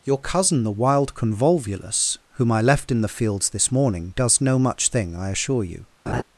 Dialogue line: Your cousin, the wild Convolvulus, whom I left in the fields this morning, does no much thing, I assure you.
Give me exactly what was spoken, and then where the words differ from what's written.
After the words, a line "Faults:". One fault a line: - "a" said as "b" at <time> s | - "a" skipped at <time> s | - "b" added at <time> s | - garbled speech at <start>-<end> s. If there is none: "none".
Your cousin, the wild Convolvulus, whom I left in the fields this morning, does no much thing, I assure you.
Faults:
none